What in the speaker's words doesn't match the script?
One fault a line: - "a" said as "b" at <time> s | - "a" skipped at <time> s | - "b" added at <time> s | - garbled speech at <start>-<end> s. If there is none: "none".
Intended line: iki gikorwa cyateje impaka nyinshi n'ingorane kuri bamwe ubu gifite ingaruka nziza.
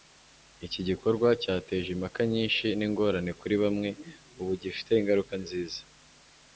none